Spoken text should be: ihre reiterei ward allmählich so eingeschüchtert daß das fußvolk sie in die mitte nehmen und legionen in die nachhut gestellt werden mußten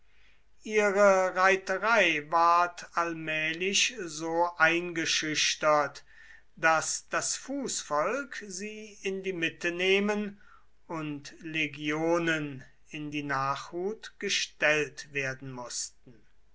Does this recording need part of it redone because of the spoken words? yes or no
no